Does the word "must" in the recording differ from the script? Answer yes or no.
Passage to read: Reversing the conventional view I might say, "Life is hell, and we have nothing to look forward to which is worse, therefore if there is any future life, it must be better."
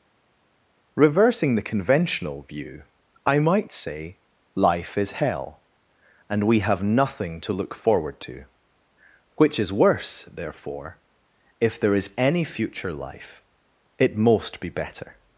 yes